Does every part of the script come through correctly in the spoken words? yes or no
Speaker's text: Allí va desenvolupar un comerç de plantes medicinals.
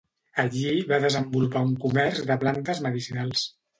yes